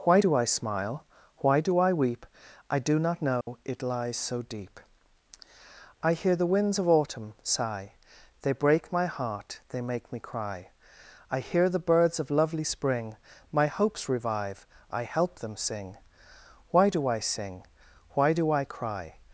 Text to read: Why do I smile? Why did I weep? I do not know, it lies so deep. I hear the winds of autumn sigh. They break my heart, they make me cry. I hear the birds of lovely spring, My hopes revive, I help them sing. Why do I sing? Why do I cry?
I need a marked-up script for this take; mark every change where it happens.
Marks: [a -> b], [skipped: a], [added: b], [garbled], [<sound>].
Why do I smile? Why [did -> do] I weep? I do not know, [dropout] it lies so deep. I hear the winds of autumn sigh. They break my heart, they make me cry. I hear the birds of lovely spring, My hopes revive, I help them sing. Why do I sing? Why do I cry?